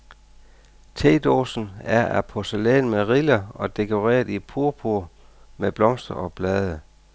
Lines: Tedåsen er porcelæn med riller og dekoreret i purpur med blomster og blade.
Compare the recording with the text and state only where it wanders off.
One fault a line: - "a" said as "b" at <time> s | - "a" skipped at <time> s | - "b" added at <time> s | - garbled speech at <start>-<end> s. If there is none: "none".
- "af" added at 2.0 s